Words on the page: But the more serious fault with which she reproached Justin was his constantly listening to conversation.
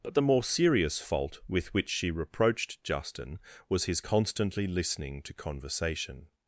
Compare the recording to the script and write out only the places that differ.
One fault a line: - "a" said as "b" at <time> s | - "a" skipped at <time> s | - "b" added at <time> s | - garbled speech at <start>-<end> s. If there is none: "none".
none